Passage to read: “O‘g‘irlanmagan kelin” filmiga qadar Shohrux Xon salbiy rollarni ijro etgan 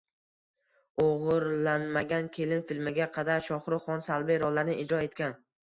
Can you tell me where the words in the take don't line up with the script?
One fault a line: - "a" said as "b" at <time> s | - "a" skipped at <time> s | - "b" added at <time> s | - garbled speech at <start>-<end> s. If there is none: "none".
none